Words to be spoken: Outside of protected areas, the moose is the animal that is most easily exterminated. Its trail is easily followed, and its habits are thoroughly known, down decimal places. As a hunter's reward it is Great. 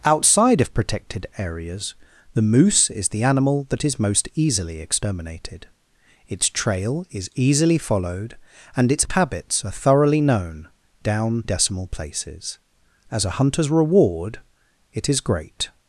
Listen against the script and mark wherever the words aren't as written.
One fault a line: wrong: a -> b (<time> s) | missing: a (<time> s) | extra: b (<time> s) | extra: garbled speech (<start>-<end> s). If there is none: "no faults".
no faults